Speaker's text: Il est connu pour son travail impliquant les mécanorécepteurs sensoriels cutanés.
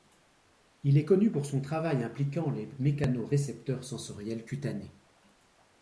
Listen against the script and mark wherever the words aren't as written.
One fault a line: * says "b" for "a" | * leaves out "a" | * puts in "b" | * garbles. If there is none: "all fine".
all fine